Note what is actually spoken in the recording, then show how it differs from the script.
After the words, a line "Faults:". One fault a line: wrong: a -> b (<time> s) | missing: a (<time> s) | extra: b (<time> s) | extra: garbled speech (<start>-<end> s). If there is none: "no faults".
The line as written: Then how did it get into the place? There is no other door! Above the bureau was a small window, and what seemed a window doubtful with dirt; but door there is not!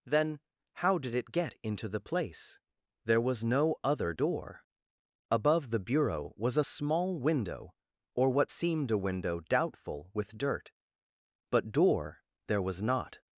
Then how did it get into the place? There was no other door! Above the bureau was a small window, or what seemed a window doubtful with dirt; but door there was not!
Faults:
wrong: is -> was (3.2 s)
wrong: and -> or (8.1 s)
wrong: is -> was (12.6 s)